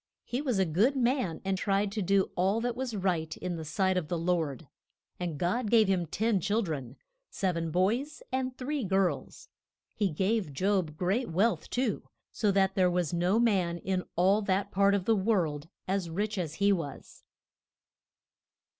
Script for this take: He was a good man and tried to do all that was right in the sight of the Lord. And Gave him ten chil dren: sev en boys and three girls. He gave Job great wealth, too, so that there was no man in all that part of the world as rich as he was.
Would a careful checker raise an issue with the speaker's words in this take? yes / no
yes